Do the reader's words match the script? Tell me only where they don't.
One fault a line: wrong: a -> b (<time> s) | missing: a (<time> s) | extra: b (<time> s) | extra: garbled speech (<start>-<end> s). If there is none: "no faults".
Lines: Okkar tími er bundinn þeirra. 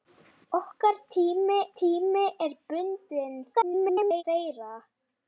extra: tími (1.8 s)
extra: garbled speech (3.5-4.2 s)